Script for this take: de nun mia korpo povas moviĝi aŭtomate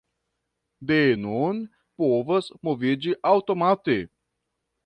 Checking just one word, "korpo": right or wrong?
wrong